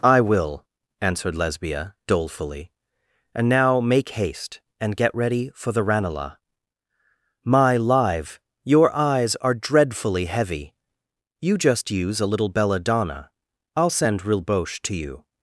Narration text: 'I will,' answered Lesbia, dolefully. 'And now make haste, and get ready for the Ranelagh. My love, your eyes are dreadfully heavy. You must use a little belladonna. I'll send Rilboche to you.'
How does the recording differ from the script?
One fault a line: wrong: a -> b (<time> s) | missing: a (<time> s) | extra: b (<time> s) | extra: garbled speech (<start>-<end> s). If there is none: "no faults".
wrong: love -> live (7.8 s)
wrong: must -> just (11.6 s)